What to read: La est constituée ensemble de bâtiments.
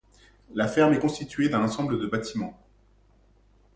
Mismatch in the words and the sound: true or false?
true